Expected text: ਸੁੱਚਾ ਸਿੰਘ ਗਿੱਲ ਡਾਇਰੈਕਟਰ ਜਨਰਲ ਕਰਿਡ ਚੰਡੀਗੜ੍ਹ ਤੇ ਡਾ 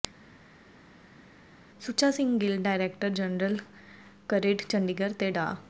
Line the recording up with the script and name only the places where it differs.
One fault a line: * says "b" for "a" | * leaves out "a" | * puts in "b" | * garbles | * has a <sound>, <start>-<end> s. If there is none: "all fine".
all fine